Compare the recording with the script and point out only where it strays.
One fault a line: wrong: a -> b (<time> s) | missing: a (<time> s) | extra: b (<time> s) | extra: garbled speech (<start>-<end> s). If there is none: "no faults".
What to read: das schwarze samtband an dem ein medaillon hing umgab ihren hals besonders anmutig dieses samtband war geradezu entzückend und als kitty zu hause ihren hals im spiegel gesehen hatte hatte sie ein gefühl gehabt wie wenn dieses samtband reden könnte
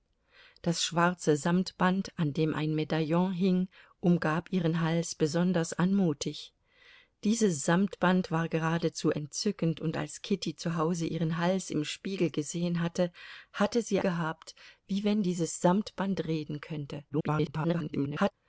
missing: ein gefühl (14.0 s)
extra: garbled speech (17.1-18.3 s)